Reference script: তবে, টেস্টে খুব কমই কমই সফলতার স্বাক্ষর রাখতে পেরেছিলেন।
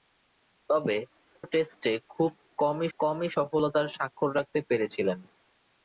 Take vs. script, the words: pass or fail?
pass